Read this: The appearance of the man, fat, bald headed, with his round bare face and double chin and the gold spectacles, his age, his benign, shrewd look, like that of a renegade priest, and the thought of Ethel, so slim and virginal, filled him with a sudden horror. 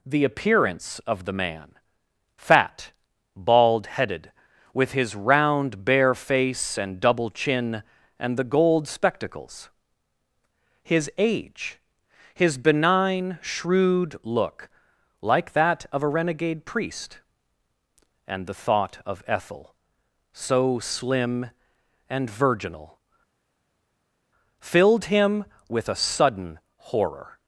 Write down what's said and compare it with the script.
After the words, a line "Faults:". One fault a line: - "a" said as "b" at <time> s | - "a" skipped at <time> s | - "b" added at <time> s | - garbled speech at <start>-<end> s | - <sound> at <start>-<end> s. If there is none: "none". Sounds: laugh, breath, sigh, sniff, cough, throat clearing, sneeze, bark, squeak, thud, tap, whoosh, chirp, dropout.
The appearance of the man, fat, bald headed, with his round bare face and double chin and the gold spectacles, his age, his benign, shrewd look, like that of a renegade priest, and the thought of Ethel, so slim and virginal, filled him with a sudden horror.
Faults:
none